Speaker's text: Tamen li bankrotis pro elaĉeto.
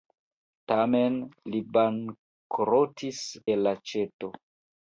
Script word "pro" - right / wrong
wrong